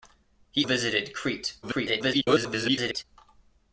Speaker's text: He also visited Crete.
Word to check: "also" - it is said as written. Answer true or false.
false